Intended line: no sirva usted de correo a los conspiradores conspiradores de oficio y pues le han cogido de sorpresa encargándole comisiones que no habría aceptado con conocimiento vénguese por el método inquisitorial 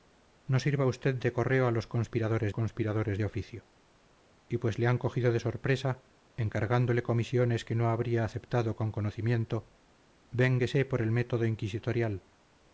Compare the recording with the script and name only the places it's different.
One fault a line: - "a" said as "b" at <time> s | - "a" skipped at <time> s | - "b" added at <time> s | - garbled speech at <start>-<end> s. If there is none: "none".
none